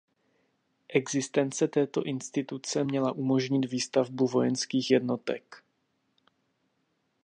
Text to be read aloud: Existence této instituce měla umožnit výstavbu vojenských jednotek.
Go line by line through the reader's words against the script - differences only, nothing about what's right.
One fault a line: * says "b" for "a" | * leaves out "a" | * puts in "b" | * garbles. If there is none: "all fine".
all fine